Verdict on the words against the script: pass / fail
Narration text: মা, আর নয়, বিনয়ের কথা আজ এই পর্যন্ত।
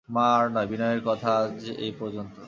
pass